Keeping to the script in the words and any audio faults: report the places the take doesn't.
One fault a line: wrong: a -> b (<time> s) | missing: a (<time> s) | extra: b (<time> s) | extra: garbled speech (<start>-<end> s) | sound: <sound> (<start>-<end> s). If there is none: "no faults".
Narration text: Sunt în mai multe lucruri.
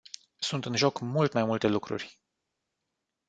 extra: joc mult (0.8 s)